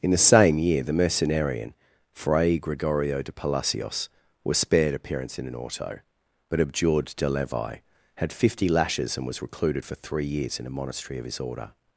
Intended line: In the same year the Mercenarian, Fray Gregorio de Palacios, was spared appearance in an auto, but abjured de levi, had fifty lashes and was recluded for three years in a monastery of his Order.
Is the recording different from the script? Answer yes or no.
no